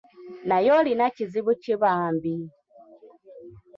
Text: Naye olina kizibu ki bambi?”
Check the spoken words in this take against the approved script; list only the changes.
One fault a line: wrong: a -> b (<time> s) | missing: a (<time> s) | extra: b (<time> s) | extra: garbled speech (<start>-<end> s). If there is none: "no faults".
no faults